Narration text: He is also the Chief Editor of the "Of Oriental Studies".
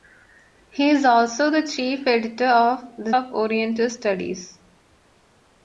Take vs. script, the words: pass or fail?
pass